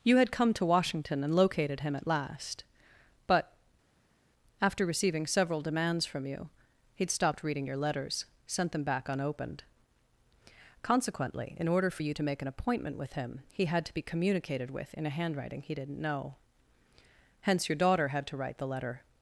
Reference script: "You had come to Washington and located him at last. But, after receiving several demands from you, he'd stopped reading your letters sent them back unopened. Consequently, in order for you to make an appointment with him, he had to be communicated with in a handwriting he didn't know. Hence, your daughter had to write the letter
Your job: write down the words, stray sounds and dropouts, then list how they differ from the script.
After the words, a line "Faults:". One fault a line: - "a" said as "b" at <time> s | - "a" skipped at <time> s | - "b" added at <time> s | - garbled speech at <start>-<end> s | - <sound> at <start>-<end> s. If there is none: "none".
"You had come to Washington and located him at last. But, after receiving several demands from you, he'd stopped reading your letters sent them back unopened. Consequently, in order for you to make an appointment with him, he had to be communicated with in a handwriting he didn't know. Hence, your daughter had to write the letter
Faults:
none